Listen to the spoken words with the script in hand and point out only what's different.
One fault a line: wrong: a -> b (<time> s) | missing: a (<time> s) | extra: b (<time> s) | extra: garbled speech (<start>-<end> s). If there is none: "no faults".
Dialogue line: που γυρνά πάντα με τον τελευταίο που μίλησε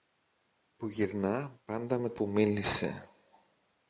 missing: τον τελευταίο (2.1 s)